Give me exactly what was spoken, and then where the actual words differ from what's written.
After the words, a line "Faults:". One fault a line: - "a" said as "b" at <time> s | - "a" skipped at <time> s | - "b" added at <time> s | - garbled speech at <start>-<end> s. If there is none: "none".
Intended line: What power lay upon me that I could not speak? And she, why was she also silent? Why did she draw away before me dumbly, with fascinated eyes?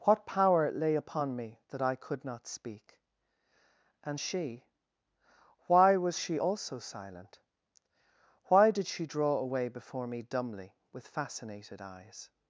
What power lay upon me that I could not speak? And she, why was she also silent? Why did she draw away before me dumbly, with fascinated eyes?
Faults:
none